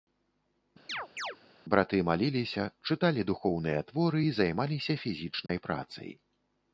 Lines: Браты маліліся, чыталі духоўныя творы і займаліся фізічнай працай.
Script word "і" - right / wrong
right